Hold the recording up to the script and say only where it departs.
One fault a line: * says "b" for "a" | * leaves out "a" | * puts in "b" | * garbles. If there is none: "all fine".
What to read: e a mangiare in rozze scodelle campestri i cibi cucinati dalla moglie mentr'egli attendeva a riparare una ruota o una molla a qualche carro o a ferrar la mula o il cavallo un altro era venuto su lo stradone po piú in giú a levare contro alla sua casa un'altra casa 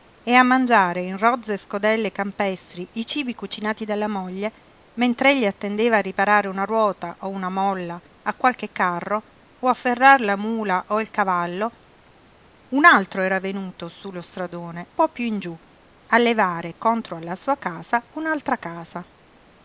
all fine